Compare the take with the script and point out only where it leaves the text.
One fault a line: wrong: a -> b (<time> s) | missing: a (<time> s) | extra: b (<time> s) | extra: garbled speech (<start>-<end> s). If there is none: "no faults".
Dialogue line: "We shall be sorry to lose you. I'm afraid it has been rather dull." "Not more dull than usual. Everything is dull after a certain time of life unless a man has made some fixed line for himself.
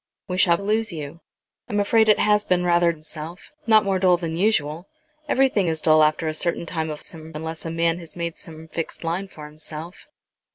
missing: be sorry to (0.6 s)
wrong: dull -> himself (2.9 s)
wrong: life -> some (7.0 s)